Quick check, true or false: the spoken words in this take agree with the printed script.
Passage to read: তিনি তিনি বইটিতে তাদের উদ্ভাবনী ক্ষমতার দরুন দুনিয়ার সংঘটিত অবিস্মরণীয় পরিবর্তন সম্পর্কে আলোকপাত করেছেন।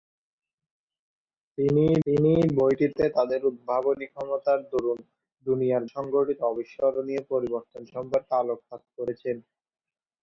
true